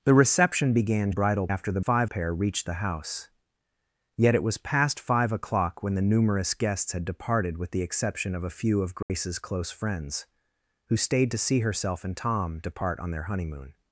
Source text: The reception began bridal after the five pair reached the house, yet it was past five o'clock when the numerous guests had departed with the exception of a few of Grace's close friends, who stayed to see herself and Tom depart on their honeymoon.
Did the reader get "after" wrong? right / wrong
right